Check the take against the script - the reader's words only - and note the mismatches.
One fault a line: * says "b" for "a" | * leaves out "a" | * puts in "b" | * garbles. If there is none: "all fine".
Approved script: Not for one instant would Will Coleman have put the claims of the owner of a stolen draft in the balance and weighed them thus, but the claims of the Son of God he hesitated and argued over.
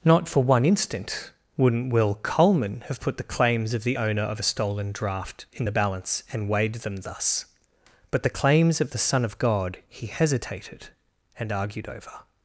* says "wouldn't" for "would"